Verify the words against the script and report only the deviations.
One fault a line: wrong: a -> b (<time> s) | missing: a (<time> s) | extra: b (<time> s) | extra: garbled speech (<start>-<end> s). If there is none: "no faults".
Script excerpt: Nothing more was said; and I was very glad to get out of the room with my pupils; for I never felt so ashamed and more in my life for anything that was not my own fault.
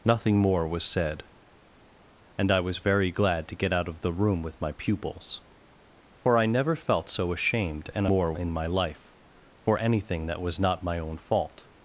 no faults